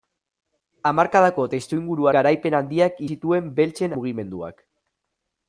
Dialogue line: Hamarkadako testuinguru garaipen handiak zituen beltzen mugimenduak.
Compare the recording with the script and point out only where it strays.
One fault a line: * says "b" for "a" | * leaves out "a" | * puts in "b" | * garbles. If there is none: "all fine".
all fine